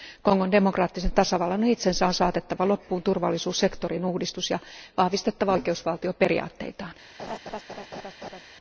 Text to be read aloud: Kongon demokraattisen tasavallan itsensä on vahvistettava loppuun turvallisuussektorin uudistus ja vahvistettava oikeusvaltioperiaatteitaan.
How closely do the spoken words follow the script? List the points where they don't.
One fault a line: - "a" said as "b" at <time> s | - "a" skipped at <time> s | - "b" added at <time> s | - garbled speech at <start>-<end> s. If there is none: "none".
- "vahvistettava" said as "saatettava" at 2.1 s